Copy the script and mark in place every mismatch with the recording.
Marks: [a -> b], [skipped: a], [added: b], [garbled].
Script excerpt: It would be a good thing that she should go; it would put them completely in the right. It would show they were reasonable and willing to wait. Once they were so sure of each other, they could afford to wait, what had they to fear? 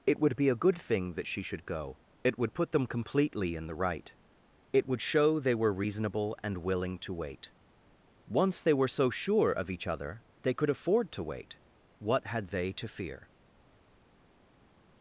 It would be a good thing that she should go; it would put them completely in the right. It would show they were reasonable and willing to wait. Once they were so sure of each other, they could afford to wait, what had they to fear?